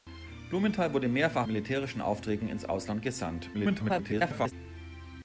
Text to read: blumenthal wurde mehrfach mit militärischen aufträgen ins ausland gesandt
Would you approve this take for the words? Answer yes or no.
no